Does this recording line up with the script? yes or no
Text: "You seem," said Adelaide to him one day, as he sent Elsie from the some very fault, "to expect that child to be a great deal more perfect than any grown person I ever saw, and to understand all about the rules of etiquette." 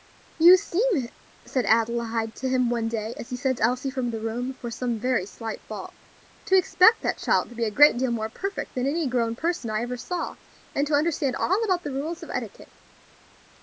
no